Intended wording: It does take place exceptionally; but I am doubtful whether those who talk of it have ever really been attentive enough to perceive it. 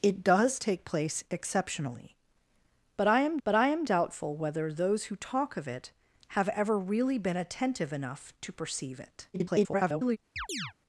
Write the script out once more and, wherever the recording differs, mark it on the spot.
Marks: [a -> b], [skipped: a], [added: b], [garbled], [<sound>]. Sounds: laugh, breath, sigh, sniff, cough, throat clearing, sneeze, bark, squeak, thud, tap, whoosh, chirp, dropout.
It does take place exceptionally; but I am [added: but I am] doubtful whether those who talk of it have ever really been attentive enough to perceive it. [garbled] [chirp]